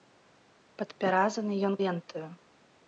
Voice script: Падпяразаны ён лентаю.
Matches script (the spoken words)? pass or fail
pass